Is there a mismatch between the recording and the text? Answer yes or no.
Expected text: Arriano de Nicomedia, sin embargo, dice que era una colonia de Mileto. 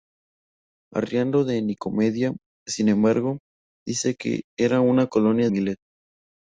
yes